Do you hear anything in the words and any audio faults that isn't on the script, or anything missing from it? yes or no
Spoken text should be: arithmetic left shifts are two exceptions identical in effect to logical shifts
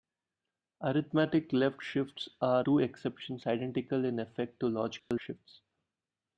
yes